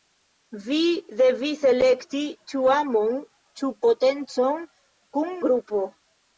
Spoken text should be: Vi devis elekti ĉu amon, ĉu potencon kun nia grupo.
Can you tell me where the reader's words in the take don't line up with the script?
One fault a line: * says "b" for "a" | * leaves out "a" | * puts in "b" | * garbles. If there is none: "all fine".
* leaves out "nia"